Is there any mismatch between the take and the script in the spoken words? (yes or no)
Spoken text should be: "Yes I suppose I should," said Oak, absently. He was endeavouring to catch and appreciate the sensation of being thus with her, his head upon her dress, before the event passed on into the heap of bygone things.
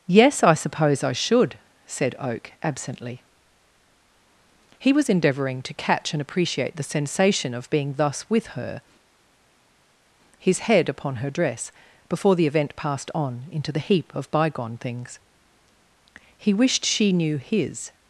yes